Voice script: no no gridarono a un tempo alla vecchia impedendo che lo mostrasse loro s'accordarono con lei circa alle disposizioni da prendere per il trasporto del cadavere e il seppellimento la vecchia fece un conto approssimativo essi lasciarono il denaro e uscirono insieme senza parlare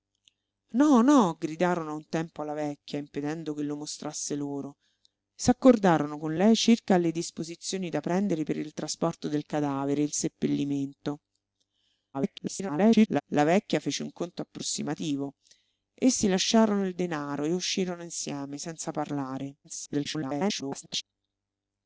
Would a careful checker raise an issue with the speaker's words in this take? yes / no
yes